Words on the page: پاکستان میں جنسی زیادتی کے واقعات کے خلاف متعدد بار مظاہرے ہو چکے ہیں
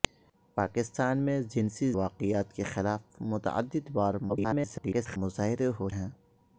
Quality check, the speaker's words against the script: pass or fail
fail